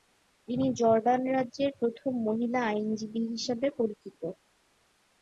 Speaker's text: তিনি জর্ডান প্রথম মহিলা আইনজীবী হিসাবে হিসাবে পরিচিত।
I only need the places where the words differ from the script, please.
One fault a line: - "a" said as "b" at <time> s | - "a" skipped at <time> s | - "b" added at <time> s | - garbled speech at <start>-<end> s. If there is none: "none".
- "রাজ্যের" added at 1.4 s
- "হিসাবে" skipped at 3.7 s